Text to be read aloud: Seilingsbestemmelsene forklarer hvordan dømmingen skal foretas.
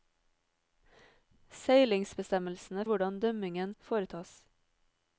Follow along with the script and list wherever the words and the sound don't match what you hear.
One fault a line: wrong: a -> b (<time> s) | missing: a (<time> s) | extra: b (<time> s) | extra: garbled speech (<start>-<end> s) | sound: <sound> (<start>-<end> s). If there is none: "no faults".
missing: forklarer (2.9 s)
missing: skal (3.7 s)